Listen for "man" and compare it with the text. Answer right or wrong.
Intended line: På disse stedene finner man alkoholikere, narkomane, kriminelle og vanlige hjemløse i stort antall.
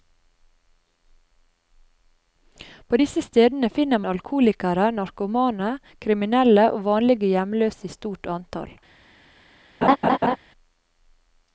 wrong